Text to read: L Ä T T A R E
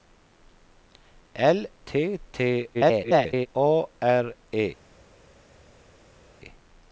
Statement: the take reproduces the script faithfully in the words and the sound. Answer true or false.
false